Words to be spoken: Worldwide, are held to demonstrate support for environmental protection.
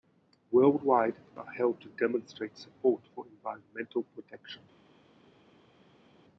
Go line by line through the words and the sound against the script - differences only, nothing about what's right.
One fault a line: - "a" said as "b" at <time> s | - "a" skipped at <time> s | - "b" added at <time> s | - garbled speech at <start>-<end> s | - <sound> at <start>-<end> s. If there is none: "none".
none